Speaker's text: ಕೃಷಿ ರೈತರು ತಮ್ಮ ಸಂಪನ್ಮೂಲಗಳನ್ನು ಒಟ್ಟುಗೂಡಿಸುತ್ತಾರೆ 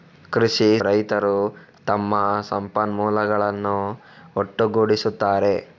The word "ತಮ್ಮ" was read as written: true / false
true